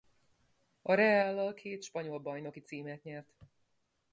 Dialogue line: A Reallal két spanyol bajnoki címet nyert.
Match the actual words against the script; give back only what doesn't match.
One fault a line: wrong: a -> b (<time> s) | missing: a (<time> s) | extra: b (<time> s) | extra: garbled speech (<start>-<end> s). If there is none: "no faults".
no faults